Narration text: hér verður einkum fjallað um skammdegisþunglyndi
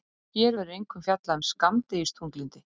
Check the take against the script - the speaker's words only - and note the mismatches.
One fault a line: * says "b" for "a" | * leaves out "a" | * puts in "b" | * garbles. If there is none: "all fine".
all fine